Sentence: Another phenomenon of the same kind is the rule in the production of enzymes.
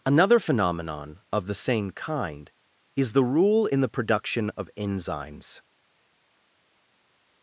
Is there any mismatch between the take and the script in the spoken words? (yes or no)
no